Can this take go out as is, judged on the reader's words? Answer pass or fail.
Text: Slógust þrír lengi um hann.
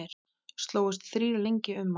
pass